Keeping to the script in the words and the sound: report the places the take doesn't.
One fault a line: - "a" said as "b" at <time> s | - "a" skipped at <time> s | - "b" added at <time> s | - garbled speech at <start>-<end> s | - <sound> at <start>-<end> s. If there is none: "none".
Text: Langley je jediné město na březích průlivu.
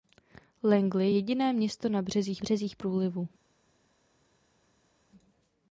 - "je" skipped at 1.1 s
- "březích" added at 2.4 s